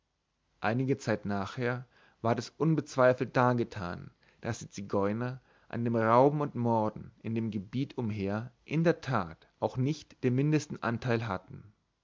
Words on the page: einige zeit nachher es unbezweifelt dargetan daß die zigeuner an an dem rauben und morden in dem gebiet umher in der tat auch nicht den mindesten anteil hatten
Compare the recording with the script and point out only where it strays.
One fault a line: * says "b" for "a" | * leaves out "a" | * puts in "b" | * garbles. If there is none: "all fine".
* puts in "ward"
* leaves out "an"